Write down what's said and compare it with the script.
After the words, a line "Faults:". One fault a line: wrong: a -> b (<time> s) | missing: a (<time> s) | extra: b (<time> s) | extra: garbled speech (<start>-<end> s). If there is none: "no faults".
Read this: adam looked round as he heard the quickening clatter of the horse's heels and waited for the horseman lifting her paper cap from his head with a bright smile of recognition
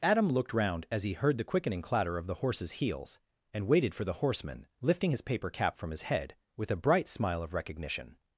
adam looked round as he heard the quickening clatter of the horse's heels and waited for the horseman lifting his paper cap from his head with a bright smile of recognition
Faults:
wrong: her -> his (5.1 s)